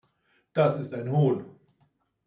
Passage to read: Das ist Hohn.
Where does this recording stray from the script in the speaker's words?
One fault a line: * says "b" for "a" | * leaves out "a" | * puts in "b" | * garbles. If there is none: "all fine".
* puts in "ein"